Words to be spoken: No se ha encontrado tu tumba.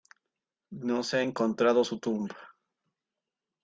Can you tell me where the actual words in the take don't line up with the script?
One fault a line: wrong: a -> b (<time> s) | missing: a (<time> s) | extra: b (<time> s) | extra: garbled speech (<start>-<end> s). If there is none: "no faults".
wrong: tu -> su (1.8 s)